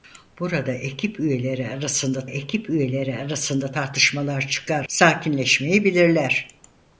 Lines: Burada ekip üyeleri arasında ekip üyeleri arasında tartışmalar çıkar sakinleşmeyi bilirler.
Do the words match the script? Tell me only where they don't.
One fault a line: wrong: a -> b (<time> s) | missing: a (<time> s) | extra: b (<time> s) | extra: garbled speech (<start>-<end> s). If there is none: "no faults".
no faults